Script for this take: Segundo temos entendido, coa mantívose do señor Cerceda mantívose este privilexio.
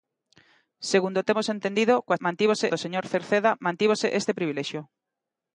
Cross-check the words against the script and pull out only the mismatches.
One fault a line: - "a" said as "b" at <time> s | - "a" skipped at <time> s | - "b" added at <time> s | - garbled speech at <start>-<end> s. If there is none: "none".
none